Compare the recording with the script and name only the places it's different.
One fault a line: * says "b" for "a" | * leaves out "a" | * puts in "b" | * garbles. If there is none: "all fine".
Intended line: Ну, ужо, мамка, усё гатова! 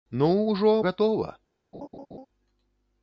* leaves out "мамка усё"